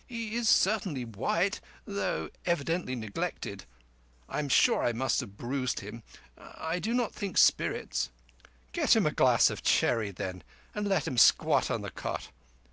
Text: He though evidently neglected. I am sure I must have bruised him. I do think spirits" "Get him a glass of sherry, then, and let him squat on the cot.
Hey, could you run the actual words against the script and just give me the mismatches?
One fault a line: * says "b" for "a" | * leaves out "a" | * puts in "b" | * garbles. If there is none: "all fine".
* puts in "is certainly white"
* puts in "not"